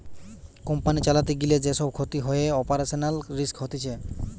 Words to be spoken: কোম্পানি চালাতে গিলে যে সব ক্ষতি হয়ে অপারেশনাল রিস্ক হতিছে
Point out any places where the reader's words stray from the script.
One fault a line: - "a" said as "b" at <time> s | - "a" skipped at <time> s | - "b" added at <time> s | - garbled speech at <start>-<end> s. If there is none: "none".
none